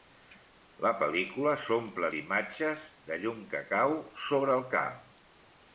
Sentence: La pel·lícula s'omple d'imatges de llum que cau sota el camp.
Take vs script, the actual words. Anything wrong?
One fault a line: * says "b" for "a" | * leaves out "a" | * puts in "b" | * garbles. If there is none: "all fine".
* says "sobre" for "sota"